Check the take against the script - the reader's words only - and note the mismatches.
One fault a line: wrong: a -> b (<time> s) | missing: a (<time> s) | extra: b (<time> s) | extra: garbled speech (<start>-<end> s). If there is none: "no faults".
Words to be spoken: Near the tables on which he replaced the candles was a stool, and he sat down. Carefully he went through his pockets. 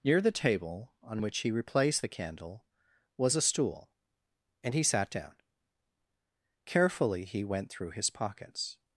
wrong: tables -> table (0.3 s)
wrong: candles -> candle (2.1 s)